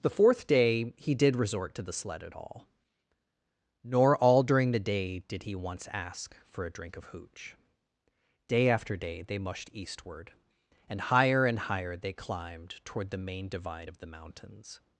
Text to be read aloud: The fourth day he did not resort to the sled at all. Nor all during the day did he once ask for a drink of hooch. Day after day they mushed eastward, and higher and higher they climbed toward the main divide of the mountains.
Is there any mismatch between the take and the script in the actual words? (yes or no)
yes